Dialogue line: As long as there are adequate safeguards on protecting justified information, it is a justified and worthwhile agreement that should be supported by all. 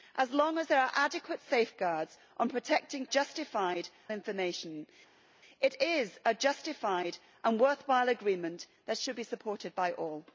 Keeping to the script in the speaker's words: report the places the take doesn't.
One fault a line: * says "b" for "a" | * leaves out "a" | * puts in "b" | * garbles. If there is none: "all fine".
all fine